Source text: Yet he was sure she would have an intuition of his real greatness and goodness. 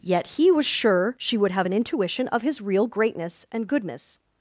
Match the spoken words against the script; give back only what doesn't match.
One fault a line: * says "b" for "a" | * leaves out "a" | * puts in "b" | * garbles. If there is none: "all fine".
all fine